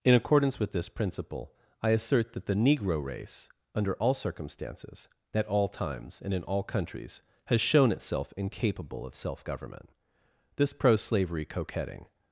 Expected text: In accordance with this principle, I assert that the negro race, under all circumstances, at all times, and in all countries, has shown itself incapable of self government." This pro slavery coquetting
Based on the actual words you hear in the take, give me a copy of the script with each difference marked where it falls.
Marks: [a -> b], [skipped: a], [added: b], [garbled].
In accordance with this principle, I assert that the negro race, under all circumstances, at all times, and in all countries, has shown itself incapable of self government." This pro slavery coquetting